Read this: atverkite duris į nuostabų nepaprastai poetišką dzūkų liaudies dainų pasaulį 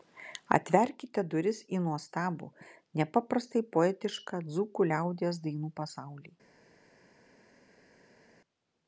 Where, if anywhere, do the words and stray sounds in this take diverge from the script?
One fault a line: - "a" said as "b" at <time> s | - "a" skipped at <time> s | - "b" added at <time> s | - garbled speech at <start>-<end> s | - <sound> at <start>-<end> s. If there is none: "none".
none